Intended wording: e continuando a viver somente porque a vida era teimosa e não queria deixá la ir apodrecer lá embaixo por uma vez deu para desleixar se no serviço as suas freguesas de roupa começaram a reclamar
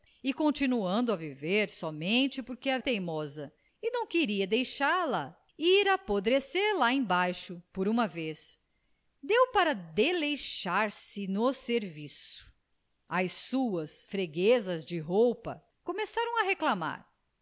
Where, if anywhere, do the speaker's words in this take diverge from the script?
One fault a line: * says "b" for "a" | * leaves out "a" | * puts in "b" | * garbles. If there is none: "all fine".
* leaves out "vida era"